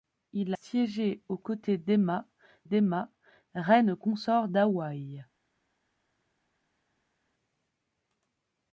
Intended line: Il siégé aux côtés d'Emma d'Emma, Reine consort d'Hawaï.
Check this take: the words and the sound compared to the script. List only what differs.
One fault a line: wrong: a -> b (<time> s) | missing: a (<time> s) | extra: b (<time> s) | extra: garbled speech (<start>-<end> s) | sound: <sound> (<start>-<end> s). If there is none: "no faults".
no faults